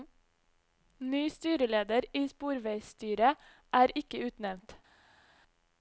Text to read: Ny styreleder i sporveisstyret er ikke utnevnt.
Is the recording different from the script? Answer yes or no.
no